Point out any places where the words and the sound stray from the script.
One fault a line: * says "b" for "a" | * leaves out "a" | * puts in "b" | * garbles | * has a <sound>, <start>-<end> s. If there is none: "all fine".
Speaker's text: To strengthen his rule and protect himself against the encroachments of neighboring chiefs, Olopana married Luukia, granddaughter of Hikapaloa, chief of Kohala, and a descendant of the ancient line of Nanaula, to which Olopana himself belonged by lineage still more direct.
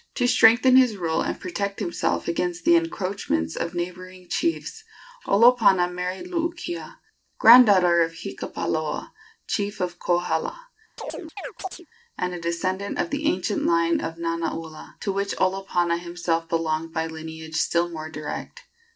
* has a chirp, 11.0-11.9 s